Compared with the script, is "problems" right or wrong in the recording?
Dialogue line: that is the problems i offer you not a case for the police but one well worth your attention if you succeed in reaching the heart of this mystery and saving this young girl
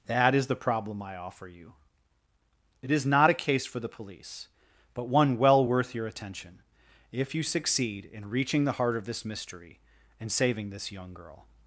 wrong